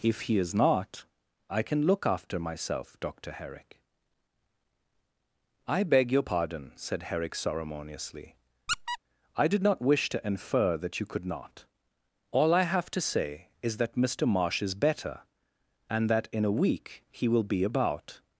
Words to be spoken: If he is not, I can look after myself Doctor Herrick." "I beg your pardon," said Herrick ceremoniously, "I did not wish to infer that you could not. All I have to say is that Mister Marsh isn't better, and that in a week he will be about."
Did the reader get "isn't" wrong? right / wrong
wrong